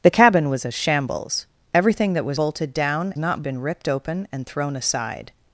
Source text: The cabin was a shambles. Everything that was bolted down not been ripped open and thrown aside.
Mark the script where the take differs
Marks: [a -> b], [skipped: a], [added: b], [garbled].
The cabin was a shambles. Everything that was bolted down not been ripped open and thrown aside.